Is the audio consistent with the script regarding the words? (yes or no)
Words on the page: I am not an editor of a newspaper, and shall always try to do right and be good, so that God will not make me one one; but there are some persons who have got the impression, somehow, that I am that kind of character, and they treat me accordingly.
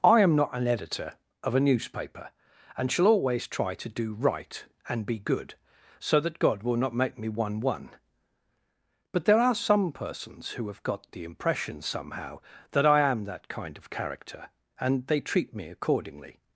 yes